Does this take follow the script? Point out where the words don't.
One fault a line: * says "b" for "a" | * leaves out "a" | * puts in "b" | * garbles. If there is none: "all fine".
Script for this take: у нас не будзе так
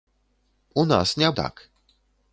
* leaves out "будзе"